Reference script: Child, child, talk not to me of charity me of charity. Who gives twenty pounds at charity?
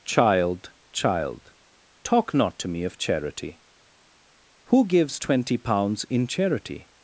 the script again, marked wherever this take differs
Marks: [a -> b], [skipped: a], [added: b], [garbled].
Child, child, talk not to me of charity [skipped: me of charity.] Who gives twenty pounds [at -> in] charity?